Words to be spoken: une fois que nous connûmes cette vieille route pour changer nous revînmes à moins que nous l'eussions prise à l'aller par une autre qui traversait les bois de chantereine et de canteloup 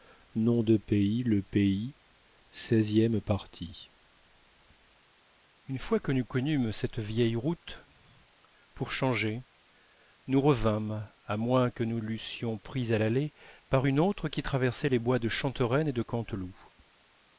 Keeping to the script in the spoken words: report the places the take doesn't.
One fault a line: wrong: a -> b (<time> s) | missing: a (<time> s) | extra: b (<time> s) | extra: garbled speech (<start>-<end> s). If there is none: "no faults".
no faults